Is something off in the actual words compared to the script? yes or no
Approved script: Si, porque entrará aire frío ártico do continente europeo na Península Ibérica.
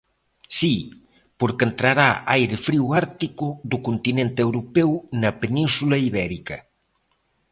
no